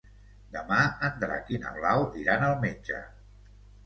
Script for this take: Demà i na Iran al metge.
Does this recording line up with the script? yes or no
no